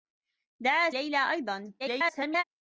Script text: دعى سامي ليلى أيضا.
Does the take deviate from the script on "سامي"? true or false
true